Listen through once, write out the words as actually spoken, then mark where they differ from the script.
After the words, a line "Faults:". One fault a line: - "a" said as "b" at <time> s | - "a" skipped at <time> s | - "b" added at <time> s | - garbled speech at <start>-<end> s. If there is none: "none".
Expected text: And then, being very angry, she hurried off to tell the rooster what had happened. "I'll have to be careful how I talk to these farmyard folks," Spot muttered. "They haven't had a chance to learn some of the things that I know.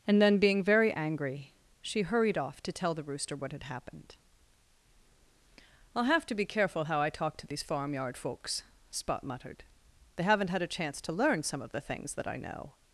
And then, being very angry, she hurried off to tell the rooster what had happened. "I'll have to be careful how I talk to these farmyard folks," Spot muttered. "They haven't had a chance to learn some of the things that I know.
Faults:
none